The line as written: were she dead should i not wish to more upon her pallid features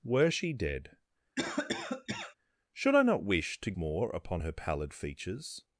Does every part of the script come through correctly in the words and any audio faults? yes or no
no